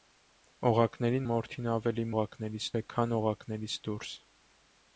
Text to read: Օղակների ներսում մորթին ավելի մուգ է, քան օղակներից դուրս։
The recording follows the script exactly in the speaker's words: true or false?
false